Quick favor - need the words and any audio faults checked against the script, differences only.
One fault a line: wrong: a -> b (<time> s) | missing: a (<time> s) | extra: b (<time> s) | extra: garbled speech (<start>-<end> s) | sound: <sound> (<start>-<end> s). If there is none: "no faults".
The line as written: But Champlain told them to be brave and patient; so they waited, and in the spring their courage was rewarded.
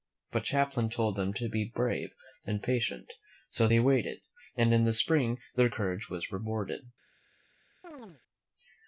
sound: chirp (7.8-8.2 s)